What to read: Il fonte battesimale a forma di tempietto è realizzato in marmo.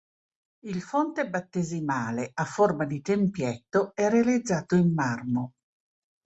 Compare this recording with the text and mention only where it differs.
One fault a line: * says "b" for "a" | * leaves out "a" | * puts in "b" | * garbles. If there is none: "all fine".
all fine